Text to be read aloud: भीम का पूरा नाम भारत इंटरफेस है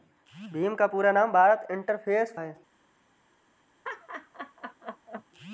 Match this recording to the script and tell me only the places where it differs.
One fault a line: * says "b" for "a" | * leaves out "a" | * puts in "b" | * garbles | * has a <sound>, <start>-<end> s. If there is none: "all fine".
* has a laugh, 3.8-5.2 s